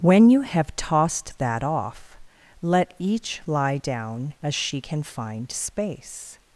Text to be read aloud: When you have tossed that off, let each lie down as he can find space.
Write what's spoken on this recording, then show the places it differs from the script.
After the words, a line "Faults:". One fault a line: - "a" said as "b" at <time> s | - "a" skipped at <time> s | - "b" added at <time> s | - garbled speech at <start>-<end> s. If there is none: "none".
When you have tossed that off, let each lie down as she can find space.
Faults:
- "he" said as "she" at 4.5 s